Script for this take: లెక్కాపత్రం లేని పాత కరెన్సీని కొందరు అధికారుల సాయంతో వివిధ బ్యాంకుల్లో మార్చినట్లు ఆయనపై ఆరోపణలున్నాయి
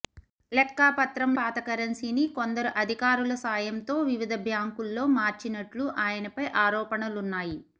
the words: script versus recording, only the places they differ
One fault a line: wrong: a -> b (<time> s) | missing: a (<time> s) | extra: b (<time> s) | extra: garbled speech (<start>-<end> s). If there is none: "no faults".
missing: లేని (1.3 s)